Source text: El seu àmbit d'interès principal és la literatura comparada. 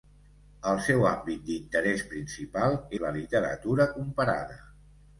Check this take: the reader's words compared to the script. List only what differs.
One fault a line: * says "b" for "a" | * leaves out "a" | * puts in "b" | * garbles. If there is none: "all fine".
* leaves out "és"